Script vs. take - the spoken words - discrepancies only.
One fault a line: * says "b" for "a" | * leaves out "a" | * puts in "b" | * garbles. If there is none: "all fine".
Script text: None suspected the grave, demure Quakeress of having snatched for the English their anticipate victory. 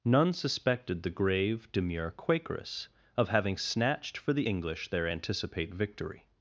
all fine